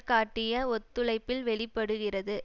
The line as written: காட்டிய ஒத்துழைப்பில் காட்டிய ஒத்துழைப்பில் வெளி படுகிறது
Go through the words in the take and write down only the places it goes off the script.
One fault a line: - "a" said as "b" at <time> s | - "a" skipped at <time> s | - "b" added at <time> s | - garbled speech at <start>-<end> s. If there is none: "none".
- "காட்டிய ஒத்துழைப்பில்" skipped at 1.4 s